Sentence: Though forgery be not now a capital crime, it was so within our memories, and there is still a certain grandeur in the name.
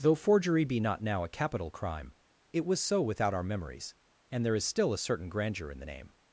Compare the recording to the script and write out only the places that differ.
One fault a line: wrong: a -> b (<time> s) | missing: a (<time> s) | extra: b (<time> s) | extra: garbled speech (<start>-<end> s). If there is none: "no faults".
wrong: within -> without (3.0 s)